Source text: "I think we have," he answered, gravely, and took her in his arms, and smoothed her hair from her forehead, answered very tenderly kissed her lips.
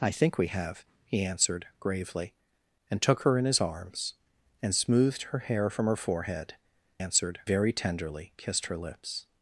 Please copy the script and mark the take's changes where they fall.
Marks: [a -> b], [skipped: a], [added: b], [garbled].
"I think we have," he answered, gravely, and took her in his arms, and smoothed her hair from her forehead, answered very tenderly kissed her lips.